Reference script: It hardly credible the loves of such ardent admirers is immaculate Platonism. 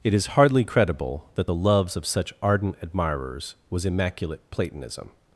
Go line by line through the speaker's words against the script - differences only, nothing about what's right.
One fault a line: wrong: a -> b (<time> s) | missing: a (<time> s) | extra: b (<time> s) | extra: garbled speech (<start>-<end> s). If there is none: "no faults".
extra: is (0.1 s)
extra: that (1.3 s)
wrong: is -> was (3.7 s)